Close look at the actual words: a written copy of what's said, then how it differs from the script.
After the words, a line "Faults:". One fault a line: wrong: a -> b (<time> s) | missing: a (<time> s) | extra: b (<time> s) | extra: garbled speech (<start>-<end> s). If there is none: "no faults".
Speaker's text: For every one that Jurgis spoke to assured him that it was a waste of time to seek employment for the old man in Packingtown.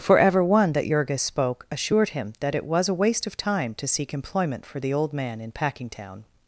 For ever one that Jurgis spoke assured him that it was a waste of time to seek employment for the old man in Packingtown.
Faults:
wrong: every -> ever (0.2 s)
missing: to (1.7 s)